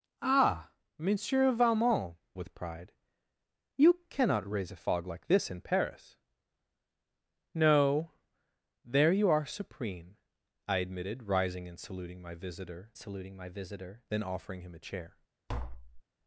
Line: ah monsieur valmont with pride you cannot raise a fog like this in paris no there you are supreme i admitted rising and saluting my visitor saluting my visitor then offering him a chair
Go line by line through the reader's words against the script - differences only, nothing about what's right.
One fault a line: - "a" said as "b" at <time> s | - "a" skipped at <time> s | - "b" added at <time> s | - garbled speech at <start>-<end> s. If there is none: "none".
none